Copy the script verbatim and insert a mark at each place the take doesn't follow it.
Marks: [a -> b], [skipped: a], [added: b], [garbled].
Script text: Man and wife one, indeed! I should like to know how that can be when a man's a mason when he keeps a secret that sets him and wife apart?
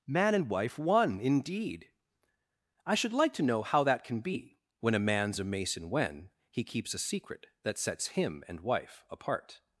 Man and wife one, indeed! I should like to know how that can be when a man's a mason when he keeps a secret that sets him and wife apart?